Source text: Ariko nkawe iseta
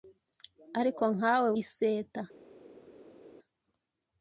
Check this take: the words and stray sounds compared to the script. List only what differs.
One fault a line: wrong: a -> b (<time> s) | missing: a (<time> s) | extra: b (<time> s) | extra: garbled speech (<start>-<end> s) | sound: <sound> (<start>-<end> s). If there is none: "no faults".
no faults